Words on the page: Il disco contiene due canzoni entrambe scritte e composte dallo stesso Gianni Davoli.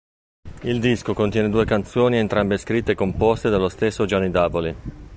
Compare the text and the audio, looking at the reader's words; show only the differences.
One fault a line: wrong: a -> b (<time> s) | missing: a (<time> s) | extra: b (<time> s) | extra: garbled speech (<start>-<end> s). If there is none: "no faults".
no faults